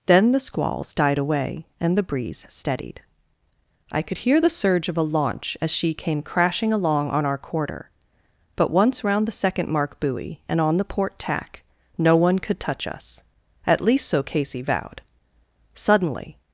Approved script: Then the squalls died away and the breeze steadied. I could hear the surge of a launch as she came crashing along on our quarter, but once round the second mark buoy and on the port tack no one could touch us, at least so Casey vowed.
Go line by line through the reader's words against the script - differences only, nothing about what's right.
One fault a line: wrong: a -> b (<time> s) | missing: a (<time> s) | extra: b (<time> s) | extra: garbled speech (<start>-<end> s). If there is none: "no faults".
extra: Suddenly (15.7 s)